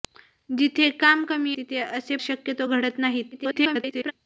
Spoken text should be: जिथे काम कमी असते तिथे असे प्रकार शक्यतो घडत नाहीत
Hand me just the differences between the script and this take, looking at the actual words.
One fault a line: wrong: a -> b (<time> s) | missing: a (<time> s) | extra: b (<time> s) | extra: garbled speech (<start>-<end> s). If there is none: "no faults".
missing: असते (1.6 s)
missing: प्रकार (2.2 s)
extra: garbled speech (3.3-4.1 s)